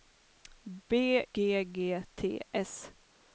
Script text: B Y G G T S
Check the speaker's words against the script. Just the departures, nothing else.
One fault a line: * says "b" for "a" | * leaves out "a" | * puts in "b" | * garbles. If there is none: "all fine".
* leaves out "Y"